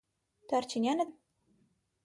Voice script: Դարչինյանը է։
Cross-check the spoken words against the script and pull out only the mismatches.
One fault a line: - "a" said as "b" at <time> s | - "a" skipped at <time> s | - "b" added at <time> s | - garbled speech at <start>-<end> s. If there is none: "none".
none